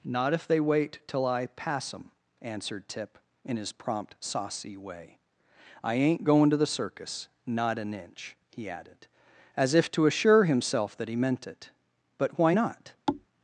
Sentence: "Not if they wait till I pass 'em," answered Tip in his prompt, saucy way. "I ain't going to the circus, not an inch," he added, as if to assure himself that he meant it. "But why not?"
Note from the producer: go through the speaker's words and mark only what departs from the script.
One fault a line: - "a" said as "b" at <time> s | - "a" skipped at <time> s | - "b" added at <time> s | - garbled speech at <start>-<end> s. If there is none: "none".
none